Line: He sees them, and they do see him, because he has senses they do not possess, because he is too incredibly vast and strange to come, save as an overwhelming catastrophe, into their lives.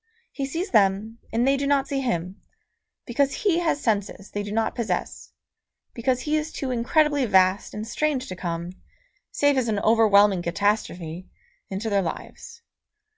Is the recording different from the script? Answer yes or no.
yes